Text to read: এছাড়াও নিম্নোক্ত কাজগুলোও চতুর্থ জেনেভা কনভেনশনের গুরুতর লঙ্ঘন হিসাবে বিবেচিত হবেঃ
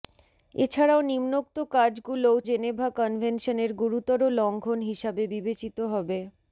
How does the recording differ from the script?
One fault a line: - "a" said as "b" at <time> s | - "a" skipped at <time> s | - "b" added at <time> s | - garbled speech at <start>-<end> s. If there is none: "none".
- "চতুর্থ" skipped at 2.4 s